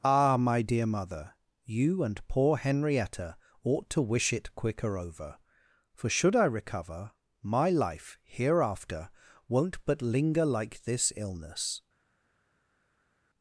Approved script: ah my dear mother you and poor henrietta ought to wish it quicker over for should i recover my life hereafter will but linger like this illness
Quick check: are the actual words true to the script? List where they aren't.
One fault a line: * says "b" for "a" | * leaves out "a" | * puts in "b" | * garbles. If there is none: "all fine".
* says "won't" for "will"